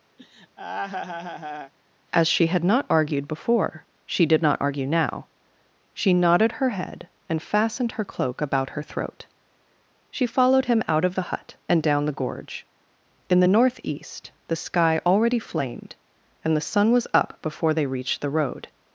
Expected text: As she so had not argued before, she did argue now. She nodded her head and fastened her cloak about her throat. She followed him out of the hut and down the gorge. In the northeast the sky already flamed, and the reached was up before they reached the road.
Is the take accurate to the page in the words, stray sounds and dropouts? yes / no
no